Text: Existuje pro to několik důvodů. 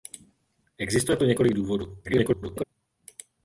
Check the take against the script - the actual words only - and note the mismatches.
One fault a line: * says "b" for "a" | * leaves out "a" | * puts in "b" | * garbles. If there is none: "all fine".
* leaves out "pro"
* garbles